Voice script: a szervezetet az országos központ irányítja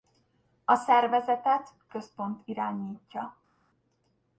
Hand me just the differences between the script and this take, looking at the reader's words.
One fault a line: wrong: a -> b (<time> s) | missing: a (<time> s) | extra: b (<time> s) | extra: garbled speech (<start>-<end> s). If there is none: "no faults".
missing: az országos (1.7 s)